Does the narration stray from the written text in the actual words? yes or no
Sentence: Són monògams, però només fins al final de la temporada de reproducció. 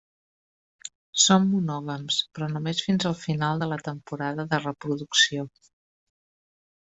no